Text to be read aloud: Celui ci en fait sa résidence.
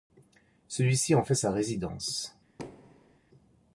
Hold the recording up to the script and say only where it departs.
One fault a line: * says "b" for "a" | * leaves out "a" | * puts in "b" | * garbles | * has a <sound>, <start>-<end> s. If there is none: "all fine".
* has a thud, 2.6-3.2 s